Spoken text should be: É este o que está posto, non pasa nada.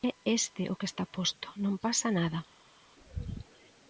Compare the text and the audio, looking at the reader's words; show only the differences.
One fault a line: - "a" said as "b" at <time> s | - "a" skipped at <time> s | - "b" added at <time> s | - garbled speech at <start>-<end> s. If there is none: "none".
none